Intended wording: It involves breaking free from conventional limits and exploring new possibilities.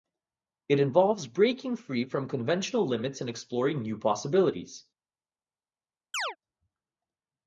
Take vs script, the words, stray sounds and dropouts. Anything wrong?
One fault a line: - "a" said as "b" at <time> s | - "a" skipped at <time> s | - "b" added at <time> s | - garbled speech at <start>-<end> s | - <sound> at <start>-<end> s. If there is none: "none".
- chirp at 6.1-6.4 s